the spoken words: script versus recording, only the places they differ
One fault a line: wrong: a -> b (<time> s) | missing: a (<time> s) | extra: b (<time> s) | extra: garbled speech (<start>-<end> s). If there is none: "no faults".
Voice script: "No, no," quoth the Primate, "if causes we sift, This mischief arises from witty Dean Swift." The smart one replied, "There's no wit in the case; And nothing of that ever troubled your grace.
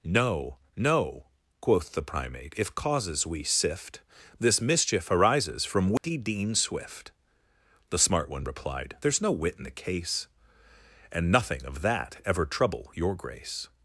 wrong: troubled -> trouble (12.4 s)